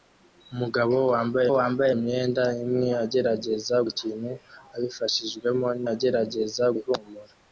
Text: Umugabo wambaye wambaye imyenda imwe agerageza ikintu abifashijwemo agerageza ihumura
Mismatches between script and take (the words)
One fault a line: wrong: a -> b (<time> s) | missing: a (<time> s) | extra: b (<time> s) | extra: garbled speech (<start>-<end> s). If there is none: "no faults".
no faults